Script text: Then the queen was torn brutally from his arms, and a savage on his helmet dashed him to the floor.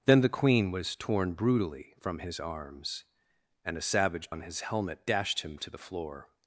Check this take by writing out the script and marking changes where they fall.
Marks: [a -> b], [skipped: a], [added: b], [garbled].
Then the queen was torn brutally from his arms, and a savage on his helmet dashed him to the floor.